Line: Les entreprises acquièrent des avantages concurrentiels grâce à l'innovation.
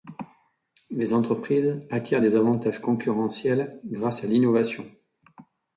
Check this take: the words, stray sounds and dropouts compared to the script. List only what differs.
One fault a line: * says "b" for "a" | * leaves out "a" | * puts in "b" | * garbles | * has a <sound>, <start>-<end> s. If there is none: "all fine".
all fine